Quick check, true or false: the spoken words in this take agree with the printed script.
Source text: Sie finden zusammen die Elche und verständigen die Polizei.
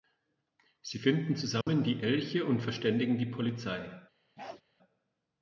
true